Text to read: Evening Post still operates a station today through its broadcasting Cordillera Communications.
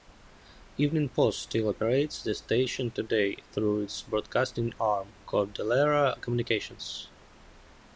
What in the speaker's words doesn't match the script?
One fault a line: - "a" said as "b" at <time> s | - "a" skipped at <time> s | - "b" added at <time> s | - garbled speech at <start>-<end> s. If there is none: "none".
- "a" said as "the" at 2.2 s
- "arm" added at 4.8 s